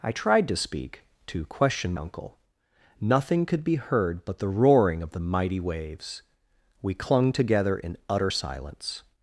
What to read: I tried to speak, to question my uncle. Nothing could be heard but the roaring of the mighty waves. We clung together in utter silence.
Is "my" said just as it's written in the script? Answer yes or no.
no